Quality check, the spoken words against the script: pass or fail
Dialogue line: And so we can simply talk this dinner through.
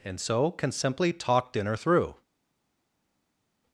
fail